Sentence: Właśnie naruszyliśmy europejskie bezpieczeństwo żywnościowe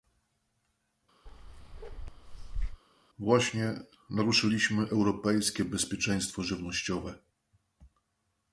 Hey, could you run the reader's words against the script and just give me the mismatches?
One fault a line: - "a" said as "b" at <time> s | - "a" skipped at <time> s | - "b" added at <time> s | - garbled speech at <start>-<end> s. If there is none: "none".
none